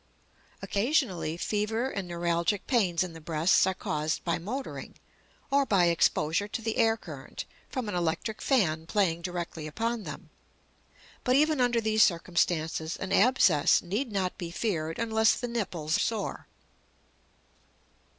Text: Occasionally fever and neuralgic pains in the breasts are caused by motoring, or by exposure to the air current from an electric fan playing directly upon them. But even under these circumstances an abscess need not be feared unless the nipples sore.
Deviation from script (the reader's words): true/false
false